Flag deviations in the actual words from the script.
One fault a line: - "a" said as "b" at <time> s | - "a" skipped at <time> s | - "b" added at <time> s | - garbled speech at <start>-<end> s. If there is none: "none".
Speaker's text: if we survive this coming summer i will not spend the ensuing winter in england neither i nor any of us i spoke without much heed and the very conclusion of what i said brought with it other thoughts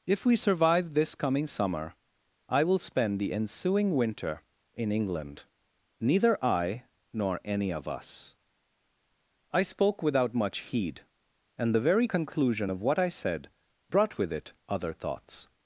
- "not" skipped at 2.8 s